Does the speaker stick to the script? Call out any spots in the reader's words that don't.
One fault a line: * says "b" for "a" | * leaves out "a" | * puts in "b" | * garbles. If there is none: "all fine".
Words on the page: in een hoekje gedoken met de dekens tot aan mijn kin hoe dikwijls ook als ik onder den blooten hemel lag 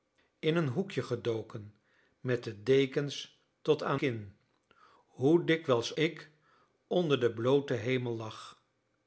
* leaves out "mijn"
* leaves out "ook als"